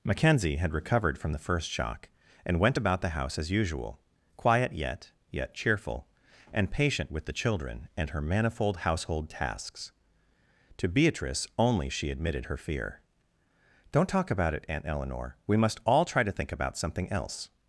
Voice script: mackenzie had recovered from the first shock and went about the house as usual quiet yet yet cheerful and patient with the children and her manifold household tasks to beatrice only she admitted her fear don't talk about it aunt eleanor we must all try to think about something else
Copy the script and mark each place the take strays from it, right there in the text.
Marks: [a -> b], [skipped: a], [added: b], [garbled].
mackenzie had recovered from the first shock and went about the house as usual quiet yet yet cheerful and patient with the children and her manifold household tasks to beatrice only she admitted her fear don't talk about it aunt eleanor we must all try to think about something else